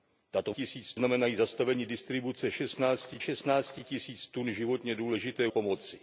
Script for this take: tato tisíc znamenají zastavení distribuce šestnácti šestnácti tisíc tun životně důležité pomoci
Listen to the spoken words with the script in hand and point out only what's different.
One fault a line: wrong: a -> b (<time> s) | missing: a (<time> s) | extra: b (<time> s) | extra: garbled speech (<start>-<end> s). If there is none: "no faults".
no faults